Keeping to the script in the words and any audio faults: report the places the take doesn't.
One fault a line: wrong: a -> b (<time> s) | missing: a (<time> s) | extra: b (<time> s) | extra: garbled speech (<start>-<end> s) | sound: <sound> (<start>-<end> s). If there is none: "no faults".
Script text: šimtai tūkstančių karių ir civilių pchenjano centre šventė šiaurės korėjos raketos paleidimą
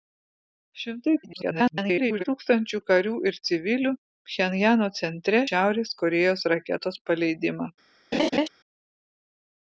extra: garbled speech (1.2-2.2 s)
missing: šventė (5.4 s)
sound: laugh (8.1-8.5 s)